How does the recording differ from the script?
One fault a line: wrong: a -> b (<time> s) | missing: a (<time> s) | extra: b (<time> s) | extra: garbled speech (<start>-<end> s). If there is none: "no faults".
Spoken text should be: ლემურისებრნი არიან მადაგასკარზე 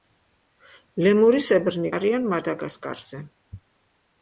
no faults